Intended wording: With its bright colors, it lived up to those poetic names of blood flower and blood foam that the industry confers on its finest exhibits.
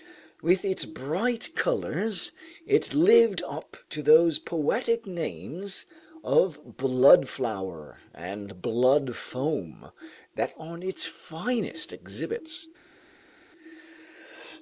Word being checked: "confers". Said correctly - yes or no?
no